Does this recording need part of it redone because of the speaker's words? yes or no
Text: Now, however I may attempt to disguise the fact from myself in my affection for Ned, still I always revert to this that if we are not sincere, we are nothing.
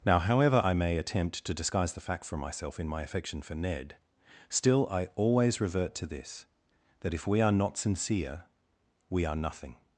no